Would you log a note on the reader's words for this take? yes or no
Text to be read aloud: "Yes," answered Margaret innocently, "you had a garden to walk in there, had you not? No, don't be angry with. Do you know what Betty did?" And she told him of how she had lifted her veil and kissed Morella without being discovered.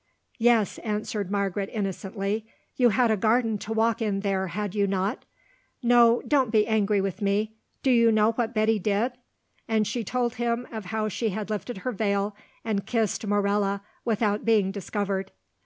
yes